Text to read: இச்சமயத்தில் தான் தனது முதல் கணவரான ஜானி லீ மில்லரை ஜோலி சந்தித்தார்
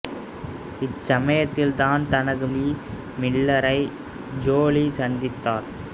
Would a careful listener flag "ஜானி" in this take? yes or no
yes